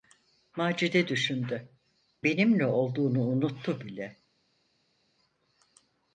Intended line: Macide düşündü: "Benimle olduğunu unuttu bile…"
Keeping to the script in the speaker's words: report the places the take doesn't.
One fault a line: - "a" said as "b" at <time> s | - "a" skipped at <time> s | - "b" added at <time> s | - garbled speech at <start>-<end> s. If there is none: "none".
none